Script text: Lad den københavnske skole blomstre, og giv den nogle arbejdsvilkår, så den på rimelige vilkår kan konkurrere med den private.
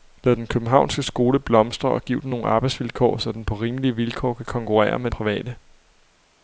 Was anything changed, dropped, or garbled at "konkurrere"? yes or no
no